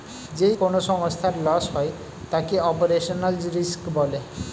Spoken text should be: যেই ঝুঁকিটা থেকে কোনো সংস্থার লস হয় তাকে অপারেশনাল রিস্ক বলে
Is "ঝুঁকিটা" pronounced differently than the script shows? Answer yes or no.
yes